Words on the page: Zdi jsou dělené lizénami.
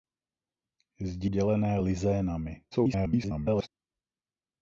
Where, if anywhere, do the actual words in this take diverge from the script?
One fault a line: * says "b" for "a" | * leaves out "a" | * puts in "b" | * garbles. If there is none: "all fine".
* leaves out "jsou"
* garbles